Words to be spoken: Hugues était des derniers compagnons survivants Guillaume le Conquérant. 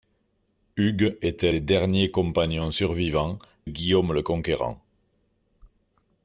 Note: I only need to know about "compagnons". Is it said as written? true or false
true